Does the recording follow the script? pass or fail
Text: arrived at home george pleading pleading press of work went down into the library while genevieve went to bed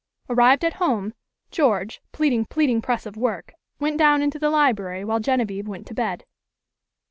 pass